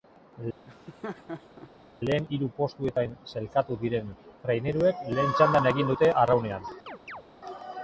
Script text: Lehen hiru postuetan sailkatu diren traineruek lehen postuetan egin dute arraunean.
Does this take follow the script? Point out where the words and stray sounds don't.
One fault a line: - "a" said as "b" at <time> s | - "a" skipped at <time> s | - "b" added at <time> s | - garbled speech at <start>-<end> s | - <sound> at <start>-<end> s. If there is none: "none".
- laugh at 0.7-1.7 s
- "postuetan" said as "txandan" at 5.4 s
- chirp at 6.9-7.2 s